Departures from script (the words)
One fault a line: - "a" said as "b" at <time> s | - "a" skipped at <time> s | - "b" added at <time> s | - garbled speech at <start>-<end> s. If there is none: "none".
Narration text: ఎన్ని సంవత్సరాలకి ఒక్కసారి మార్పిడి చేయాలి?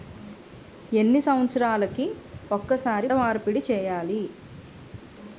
none